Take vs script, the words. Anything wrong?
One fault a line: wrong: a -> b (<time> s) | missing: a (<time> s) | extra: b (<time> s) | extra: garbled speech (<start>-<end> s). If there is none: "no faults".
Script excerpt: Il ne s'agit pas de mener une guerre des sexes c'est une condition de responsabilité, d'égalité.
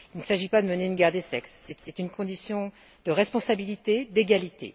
extra: c'est (1.8 s)